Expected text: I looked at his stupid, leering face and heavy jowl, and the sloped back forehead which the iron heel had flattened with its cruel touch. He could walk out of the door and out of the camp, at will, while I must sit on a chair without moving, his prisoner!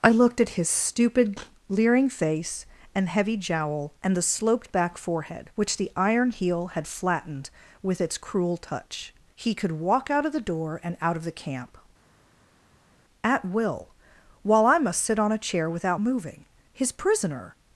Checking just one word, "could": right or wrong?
right